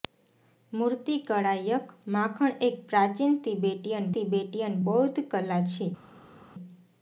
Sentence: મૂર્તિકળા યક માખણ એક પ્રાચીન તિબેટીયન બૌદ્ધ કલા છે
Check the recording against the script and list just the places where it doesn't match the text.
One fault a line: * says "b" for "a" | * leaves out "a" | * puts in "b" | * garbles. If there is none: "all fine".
* puts in "તિબેટીયન"